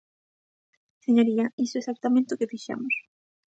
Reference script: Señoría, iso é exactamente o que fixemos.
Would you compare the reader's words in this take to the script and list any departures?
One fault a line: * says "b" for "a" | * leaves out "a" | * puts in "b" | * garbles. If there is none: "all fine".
all fine